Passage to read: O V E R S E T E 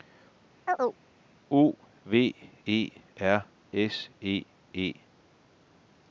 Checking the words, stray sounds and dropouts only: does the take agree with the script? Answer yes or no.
no